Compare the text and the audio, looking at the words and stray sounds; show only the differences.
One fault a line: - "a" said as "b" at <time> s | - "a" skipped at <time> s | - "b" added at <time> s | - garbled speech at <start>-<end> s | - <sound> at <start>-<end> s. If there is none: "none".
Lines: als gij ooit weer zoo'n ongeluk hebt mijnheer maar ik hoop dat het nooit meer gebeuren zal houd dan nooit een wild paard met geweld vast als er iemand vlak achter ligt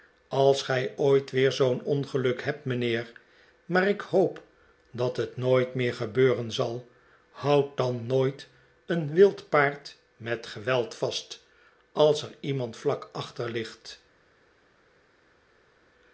none